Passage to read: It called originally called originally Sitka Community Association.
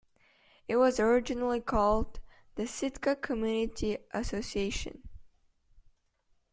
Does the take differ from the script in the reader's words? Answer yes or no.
yes